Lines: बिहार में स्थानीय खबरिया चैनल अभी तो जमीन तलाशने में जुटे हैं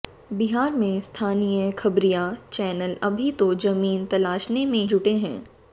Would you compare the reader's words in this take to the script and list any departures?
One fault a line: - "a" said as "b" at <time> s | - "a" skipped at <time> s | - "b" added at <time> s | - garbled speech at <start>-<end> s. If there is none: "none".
none